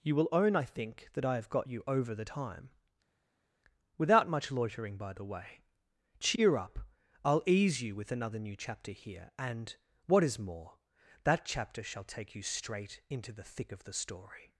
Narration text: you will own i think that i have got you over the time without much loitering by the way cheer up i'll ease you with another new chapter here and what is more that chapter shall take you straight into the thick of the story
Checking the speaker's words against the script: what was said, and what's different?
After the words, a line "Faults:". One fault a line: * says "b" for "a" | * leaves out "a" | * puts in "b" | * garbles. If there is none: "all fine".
you will own i think that i have got you over the time without much loitering by the way cheer up i'll ease you with another new chapter here and what is more that chapter shall take you straight into the thick of the story
Faults:
all fine